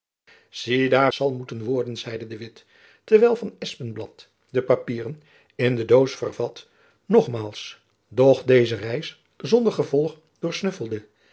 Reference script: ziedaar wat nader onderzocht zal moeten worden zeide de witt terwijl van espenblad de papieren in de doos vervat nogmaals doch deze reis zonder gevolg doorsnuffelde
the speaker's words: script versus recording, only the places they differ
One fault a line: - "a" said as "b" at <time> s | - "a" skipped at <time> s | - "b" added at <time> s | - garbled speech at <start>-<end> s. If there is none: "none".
- "wat nader onderzocht" skipped at 1.1 s